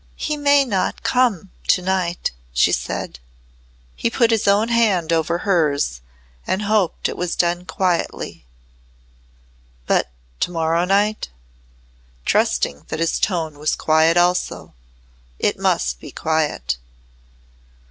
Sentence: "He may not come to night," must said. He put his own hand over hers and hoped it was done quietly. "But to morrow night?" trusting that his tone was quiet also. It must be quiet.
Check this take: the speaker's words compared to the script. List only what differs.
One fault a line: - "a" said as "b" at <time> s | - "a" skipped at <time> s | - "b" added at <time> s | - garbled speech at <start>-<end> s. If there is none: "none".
- "must" said as "she" at 2.5 s